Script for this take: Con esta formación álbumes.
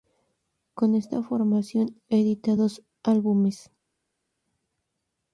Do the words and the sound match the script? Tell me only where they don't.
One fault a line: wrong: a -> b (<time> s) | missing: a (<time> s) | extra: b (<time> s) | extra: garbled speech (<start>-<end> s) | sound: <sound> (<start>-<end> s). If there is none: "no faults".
extra: edita dos (2.1 s)